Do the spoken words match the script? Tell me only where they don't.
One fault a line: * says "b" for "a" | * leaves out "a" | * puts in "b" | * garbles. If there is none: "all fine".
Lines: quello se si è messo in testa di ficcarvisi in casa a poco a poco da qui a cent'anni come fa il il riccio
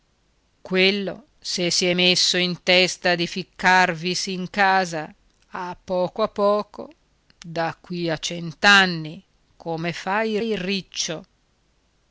all fine